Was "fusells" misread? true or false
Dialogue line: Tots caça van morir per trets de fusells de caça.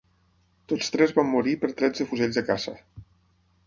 false